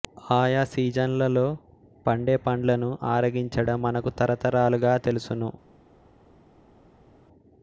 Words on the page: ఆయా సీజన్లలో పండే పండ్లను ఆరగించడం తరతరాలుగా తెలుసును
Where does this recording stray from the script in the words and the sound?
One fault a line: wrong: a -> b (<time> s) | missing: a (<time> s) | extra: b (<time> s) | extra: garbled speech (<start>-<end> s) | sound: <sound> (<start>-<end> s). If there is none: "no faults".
extra: మనకు (3.8 s)